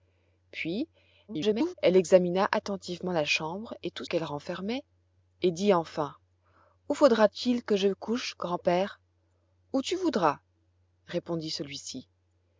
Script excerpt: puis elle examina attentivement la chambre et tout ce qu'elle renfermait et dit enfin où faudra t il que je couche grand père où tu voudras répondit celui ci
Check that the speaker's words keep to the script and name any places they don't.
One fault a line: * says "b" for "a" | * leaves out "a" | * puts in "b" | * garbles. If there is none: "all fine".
* garbles
* leaves out "ce"